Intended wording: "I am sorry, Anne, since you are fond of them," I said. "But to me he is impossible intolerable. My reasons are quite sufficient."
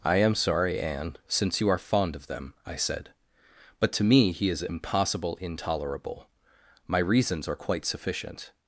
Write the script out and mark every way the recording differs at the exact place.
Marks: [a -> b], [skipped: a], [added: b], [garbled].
"I am sorry, Anne, since you are fond of them," I said. "But to me he is impossible intolerable. My reasons are quite sufficient."